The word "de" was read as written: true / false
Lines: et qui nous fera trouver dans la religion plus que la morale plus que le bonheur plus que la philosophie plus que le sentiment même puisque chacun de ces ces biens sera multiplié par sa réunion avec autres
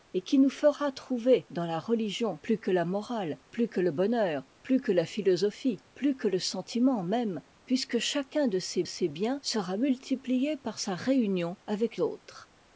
true